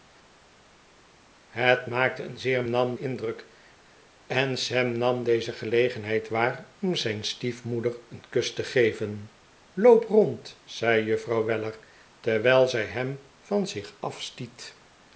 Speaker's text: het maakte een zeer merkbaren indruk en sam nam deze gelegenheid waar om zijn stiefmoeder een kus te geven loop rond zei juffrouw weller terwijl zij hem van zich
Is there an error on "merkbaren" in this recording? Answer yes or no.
yes